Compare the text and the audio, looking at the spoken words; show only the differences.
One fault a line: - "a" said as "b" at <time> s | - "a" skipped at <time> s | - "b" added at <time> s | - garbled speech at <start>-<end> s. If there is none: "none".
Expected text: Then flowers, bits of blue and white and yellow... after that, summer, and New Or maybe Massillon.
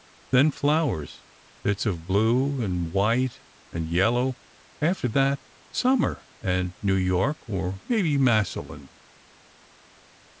- "York" added at 7.0 s